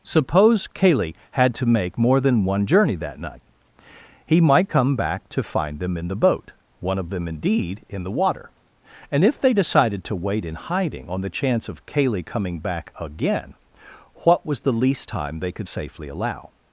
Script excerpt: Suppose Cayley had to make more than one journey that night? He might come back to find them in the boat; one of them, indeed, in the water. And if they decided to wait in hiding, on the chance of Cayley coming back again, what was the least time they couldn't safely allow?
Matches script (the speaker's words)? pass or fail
fail